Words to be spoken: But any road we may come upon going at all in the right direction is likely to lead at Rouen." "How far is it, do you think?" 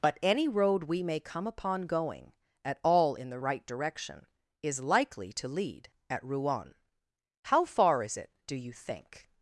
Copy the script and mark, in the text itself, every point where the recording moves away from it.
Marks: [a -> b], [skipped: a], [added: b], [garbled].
But any road we may come upon going at all in the right direction is likely to lead at Rouen." "How far is it, do you think?"